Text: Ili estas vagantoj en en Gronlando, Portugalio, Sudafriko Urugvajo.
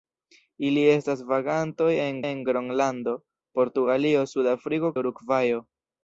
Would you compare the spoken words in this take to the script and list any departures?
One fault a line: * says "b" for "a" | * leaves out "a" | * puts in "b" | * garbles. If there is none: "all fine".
all fine